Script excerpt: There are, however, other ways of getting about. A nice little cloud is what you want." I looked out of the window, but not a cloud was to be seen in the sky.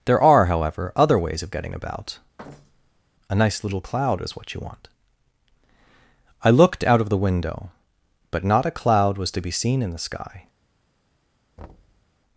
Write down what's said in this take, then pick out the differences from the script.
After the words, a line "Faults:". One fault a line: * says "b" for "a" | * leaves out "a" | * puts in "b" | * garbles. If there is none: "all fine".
There are, however, other ways of getting about. A nice little cloud is what you want." I looked out of the window, but not a cloud was to be seen in the sky.
Faults:
all fine